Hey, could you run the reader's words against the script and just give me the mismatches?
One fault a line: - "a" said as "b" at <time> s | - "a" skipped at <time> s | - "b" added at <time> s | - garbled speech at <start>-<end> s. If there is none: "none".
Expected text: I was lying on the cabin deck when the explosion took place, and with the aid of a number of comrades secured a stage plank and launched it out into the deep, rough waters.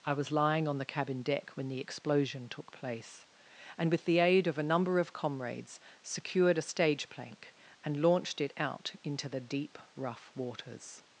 none